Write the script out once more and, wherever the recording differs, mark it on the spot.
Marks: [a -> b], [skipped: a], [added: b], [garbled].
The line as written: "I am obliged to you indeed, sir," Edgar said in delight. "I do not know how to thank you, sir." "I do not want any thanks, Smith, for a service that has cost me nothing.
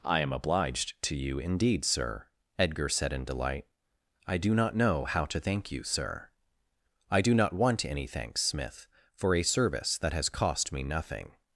"I am obliged to you indeed, sir," Edgar said in delight. "I do not know how to thank you, sir." "I do not want any thanks, Smith, for a service that has cost me nothing.